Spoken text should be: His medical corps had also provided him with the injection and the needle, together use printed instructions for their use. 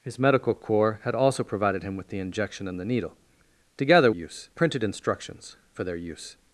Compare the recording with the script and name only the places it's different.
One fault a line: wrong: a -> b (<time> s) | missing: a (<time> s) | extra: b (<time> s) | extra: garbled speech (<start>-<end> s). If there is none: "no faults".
no faults